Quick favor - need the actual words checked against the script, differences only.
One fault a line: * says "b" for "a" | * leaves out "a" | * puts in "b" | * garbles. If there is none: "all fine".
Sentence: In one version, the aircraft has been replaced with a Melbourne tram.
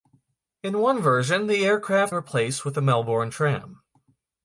* leaves out "has been"